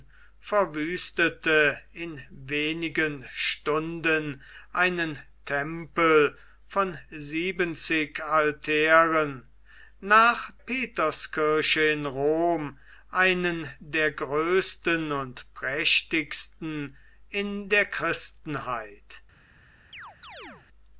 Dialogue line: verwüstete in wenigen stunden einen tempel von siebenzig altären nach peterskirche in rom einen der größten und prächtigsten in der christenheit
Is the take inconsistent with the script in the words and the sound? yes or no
yes